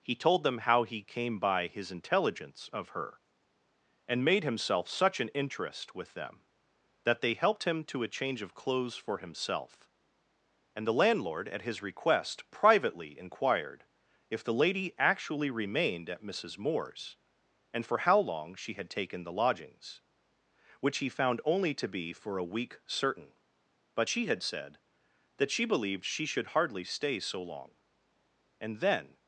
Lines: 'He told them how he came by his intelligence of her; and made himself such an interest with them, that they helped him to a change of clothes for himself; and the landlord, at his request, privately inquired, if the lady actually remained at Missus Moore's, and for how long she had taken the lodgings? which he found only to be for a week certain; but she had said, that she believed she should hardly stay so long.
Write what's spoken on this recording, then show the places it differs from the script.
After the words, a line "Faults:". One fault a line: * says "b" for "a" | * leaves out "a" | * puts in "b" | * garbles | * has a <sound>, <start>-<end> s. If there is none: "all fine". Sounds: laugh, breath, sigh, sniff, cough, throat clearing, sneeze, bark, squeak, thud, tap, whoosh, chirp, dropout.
'He told them how he came by his intelligence of her; and made himself such an interest with them, that they helped him to a change of clothes for himself; and the landlord, at his request, privately inquired, if the lady actually remained at Missus Moore's, and for how long she had taken the lodgings? which he found only to be for a week certain; but she had said, that she believed she should hardly stay so long. And then
Faults:
* puts in "And then"